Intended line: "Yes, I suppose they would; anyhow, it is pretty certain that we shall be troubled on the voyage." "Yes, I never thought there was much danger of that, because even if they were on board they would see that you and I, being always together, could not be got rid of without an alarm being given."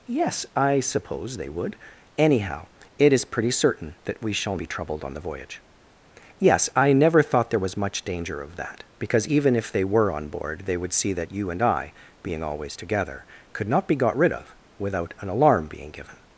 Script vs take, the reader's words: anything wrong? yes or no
no